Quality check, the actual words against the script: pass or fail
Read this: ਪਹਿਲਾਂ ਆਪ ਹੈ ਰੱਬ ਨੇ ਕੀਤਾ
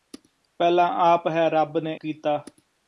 pass